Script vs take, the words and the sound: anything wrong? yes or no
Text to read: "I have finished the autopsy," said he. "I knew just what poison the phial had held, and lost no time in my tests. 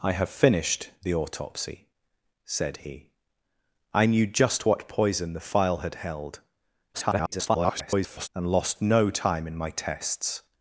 yes